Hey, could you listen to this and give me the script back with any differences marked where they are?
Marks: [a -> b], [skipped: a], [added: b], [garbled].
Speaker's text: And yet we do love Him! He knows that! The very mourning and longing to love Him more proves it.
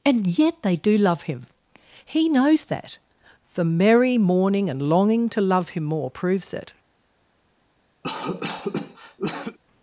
And yet [we -> they] do love Him! He knows that! The [very -> merry] mourning and longing to love Him more proves it.